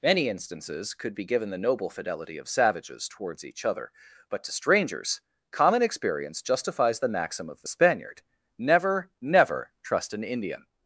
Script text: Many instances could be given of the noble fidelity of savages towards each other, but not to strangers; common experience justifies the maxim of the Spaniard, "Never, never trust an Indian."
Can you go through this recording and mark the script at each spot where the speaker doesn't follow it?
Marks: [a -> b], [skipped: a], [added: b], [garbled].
Many instances could be given [skipped: of] the noble fidelity of savages towards each other, but [skipped: not] to strangers; common experience justifies the maxim of the Spaniard, "Never, never trust an Indian."